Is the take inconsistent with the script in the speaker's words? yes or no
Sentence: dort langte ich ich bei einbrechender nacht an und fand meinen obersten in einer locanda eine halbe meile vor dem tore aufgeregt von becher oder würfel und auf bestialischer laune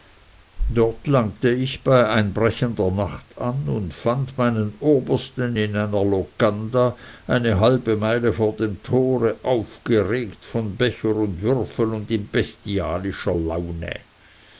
yes